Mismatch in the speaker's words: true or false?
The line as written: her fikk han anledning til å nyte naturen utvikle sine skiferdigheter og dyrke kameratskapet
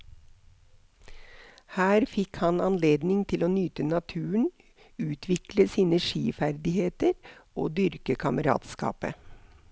false